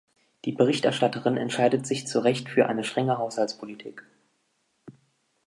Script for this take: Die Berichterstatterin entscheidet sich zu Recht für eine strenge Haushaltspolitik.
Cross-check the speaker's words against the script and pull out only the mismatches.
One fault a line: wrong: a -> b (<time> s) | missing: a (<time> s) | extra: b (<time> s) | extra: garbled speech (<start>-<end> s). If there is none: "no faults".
no faults